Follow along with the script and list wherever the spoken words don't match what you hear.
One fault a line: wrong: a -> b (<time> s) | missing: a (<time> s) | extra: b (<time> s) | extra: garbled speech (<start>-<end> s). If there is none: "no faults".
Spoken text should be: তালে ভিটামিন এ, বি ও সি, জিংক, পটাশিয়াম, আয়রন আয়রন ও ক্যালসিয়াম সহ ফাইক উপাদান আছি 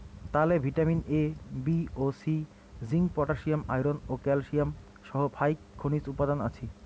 missing: আয়রন (4.0 s)
extra: খনিজ (5.8 s)